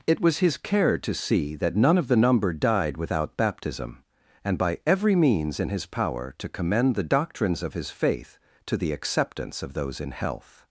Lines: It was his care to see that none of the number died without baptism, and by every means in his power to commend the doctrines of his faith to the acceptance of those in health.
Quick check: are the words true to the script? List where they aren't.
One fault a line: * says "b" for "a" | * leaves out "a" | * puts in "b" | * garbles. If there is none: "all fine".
all fine